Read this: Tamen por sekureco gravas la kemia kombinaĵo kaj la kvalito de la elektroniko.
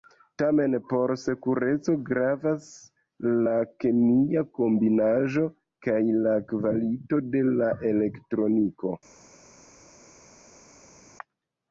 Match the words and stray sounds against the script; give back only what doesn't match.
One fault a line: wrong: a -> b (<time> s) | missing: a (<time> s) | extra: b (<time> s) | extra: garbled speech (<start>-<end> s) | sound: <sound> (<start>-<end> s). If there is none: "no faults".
no faults